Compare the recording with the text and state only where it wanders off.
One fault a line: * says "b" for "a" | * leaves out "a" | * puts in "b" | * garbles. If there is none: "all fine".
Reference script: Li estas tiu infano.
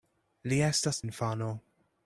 * leaves out "tiu"